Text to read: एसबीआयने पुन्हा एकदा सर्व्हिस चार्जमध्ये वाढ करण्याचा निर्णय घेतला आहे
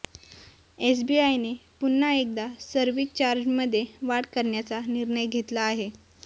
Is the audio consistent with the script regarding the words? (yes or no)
yes